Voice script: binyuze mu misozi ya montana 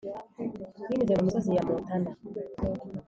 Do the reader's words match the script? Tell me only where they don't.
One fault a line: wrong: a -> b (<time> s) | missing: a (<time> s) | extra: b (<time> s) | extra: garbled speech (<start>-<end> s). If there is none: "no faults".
no faults